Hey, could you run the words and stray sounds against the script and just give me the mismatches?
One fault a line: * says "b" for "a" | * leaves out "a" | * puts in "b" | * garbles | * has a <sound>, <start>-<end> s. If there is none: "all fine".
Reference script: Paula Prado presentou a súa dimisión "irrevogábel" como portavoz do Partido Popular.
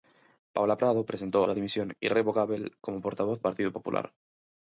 * leaves out "a"
* leaves out "do"